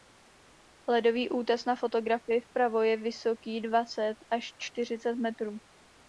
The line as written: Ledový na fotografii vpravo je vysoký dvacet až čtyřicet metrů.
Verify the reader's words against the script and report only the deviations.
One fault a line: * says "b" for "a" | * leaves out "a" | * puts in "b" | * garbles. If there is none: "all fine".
* puts in "útes"